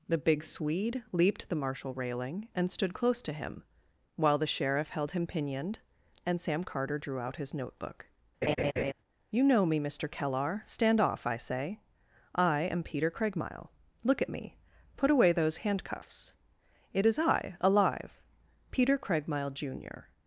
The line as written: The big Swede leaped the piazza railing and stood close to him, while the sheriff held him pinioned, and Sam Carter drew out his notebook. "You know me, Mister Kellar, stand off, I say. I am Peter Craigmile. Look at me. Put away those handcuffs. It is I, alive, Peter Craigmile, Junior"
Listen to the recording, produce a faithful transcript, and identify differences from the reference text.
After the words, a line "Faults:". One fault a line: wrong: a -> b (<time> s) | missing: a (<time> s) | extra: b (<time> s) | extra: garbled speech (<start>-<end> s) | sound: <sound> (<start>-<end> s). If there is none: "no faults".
The big Swede leaped the marshal railing and stood close to him, while the sheriff held him pinioned, and Sam Carter drew out his notebook. "You know me, Mister Kellar, stand off, I say. I am Peter Craigmile. Look at me. Put away those handcuffs. It is I, alive, Peter Craigmile, Junior"
Faults:
wrong: piazza -> marshal (1.6 s)
sound: laugh (8.4-8.9 s)